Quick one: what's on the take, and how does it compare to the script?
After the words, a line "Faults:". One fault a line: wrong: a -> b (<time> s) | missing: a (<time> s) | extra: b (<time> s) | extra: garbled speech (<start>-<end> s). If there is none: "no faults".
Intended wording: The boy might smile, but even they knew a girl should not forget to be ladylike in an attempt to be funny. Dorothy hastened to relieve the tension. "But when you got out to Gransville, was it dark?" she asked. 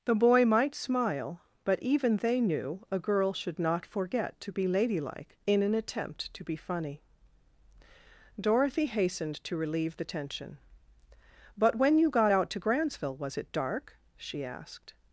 The boy might smile, but even they knew a girl should not forget to be ladylike in an attempt to be funny. Dorothy hastened to relieve the tension. "But when you got out to Gransville, was it dark?" she asked.
Faults:
no faults